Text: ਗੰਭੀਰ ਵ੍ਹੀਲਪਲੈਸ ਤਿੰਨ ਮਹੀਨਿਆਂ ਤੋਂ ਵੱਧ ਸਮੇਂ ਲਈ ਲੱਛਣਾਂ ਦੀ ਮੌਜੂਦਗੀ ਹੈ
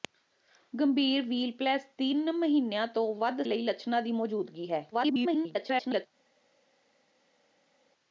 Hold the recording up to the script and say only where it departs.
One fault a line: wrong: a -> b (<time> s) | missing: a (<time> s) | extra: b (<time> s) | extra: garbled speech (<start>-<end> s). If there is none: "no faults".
missing: ਸਮੇਂ (3.4 s)
extra: garbled speech (4.9-6.1 s)